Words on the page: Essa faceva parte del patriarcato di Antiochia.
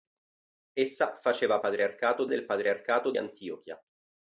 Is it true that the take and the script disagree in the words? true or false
true